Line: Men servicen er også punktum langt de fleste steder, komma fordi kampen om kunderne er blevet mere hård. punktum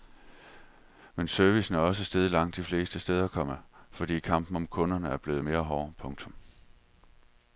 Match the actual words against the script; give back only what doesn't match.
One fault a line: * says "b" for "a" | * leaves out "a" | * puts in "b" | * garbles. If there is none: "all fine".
* says "steget" for "punktum"